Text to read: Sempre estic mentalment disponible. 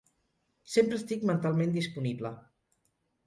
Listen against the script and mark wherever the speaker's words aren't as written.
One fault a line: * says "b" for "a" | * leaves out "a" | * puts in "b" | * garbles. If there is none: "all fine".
all fine